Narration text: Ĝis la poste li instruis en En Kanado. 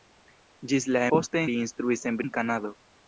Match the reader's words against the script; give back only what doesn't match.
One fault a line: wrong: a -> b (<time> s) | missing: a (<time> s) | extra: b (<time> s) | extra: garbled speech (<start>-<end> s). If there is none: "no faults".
no faults